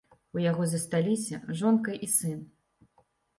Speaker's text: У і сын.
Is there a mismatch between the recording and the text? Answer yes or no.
yes